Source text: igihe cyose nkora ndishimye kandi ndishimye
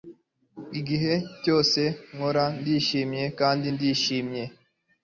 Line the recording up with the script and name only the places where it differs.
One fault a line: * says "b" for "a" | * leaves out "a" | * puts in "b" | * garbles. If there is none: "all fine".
all fine